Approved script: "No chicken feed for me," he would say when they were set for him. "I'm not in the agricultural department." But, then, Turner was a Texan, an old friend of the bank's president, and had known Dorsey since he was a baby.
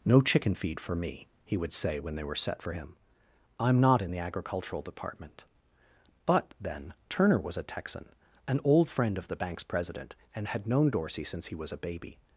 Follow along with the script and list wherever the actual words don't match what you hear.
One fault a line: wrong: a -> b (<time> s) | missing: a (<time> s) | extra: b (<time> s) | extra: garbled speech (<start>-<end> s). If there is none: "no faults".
no faults